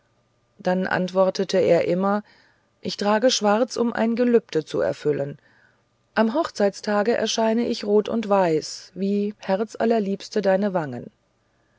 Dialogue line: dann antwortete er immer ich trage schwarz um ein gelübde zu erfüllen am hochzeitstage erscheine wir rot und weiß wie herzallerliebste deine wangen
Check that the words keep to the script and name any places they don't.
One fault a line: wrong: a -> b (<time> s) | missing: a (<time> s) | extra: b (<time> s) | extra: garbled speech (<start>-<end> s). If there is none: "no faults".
wrong: wir -> ich (7.7 s)